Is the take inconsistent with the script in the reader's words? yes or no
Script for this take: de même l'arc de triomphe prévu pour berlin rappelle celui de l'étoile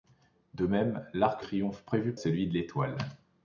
yes